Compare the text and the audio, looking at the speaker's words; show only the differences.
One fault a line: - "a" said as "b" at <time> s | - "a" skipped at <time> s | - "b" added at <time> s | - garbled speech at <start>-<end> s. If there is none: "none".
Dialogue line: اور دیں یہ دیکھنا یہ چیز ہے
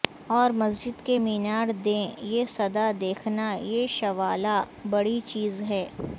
- "مسجد کے مینار" added at 0.5 s
- "صدا" added at 2.5 s
- "شوالا بڑی" added at 3.9 s